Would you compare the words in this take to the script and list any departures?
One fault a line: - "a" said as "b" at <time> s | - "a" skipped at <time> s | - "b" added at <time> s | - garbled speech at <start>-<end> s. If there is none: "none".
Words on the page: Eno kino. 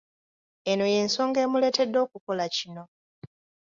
- "y'ensonga emuleetedde okukola" added at 0.9 s